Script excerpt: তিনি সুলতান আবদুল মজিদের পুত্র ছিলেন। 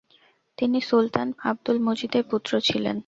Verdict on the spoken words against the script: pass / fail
pass